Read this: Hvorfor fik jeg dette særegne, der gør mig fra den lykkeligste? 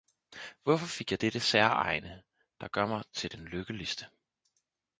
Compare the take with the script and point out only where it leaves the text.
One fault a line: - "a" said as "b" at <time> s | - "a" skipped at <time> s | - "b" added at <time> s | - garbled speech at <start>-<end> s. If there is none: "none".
- "fra" said as "til" at 3.1 s